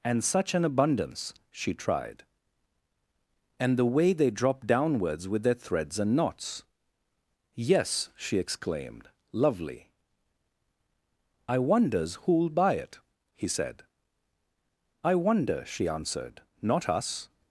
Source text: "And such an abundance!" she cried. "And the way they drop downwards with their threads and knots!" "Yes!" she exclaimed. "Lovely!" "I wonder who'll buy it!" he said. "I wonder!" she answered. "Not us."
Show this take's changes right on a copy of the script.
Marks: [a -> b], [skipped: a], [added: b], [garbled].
"And such an abundance!" she [cried. -> tried] "And the way they drop downwards with their threads and knots!" "Yes!" she exclaimed. "Lovely!" "I [wonder -> wonders] who'll buy it!" he said. "I wonder!" she answered. "Not us."